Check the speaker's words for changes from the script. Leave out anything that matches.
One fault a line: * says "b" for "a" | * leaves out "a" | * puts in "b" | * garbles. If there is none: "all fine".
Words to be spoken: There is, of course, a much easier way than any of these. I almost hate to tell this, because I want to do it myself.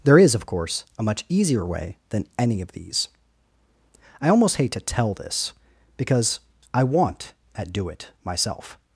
* says "at" for "to"